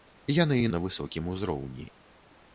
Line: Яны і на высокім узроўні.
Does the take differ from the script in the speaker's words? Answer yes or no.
no